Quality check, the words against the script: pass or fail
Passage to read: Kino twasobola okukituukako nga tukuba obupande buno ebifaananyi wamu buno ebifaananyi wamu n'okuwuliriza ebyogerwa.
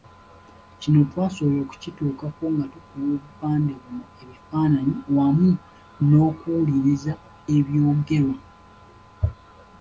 fail